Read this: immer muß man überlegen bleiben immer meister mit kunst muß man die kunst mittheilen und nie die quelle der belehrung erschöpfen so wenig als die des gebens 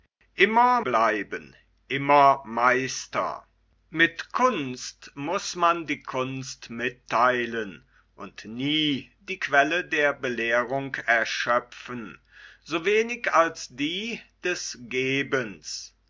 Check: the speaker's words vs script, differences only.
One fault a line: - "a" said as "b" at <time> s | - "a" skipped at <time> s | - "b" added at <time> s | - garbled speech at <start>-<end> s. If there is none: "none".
- "muß man überlegen" skipped at 0.8 s